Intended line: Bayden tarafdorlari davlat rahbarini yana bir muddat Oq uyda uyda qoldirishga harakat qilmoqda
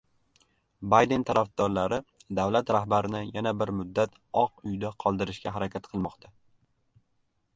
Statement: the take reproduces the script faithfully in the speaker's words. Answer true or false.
false